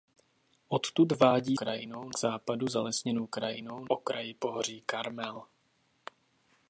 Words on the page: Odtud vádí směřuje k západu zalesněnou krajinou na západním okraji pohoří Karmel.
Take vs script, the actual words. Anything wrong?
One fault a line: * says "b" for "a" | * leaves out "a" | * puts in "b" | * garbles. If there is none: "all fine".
* says "krajinou" for "směřuje"
* leaves out "na západním"